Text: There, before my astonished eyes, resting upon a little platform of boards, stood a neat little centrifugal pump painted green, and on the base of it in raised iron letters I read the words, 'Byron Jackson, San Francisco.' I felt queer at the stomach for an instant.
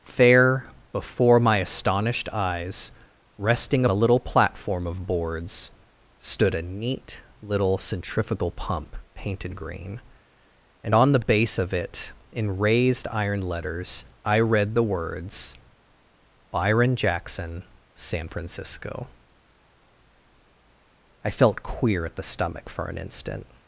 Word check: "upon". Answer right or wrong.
wrong